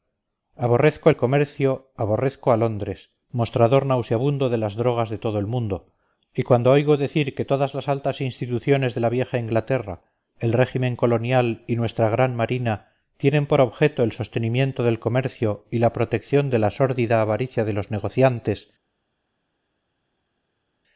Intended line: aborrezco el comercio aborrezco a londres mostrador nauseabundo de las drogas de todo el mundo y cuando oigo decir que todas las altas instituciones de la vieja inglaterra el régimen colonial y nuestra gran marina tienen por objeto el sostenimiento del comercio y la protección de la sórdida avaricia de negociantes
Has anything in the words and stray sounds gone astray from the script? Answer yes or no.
yes